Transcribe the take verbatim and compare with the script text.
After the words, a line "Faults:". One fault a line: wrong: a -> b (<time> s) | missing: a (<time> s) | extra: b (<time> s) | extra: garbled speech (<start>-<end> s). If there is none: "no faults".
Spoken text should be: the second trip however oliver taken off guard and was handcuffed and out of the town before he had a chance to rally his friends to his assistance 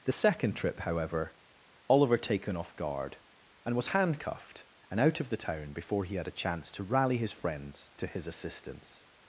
the second trip however oliver taken off guard and was handcuffed and out of the town before he had a chance to rally his friends to his assistance
Faults:
no faults